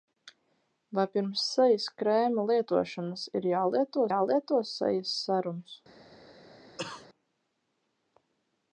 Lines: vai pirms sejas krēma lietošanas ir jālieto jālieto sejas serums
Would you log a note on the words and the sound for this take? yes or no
yes